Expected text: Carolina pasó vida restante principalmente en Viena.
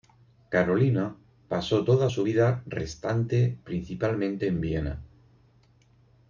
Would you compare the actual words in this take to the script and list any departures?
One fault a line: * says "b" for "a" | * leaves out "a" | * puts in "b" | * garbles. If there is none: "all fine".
* puts in "toda su"